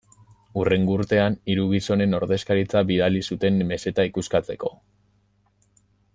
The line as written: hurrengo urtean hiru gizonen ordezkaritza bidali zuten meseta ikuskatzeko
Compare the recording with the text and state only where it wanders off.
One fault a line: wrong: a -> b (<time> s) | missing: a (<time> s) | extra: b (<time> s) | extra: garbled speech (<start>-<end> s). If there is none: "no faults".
no faults